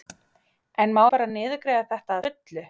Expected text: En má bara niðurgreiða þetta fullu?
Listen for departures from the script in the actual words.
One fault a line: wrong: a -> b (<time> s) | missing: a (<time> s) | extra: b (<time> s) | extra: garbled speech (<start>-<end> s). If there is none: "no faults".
no faults